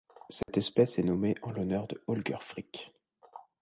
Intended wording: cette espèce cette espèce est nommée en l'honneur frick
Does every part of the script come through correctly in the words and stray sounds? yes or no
no